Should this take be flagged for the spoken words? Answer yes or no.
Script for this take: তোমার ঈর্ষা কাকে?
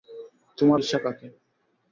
no